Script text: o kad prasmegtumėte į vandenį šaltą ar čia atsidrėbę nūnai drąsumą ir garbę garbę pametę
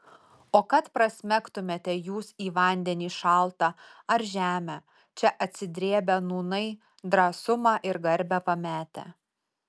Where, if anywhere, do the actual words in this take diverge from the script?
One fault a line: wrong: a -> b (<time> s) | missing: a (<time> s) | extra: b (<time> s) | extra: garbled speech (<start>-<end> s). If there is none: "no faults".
extra: jūs (2.0 s)
extra: žemę (4.3 s)
missing: garbę (8.4 s)